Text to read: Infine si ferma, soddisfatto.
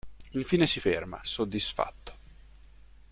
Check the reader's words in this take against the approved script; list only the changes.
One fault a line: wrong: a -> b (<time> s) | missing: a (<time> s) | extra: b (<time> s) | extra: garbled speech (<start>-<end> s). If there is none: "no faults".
no faults